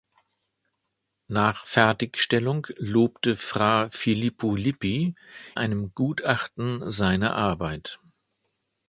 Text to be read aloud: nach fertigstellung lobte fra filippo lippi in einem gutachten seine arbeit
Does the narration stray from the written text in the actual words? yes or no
yes